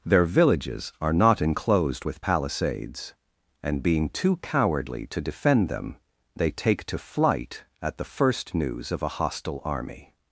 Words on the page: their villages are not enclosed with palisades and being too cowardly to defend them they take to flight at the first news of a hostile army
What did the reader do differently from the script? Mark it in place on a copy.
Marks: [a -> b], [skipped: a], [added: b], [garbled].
their villages are not enclosed with palisades and being too cowardly to defend them they take to flight at the first news of a hostile army